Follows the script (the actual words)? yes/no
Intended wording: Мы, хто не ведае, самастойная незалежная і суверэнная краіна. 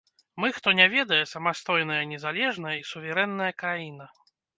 yes